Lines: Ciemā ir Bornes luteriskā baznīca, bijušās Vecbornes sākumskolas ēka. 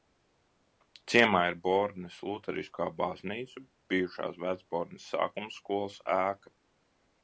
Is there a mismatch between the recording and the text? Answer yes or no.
no